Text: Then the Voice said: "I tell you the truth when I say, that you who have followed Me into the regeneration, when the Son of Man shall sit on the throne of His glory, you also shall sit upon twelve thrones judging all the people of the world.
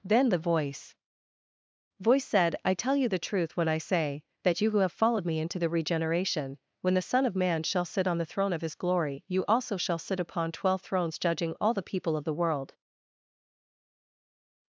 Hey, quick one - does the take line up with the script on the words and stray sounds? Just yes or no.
no